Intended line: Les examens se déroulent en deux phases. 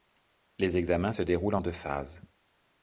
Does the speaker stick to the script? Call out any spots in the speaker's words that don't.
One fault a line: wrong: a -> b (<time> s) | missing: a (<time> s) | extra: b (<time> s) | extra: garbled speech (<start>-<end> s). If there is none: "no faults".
no faults